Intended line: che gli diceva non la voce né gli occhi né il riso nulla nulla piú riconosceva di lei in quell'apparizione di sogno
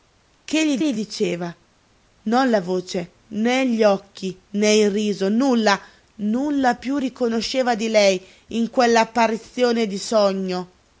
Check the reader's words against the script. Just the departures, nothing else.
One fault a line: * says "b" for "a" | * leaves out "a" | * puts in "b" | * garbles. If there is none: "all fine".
* puts in "gli"